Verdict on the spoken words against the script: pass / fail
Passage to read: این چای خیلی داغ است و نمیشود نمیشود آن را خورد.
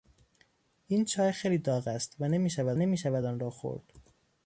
pass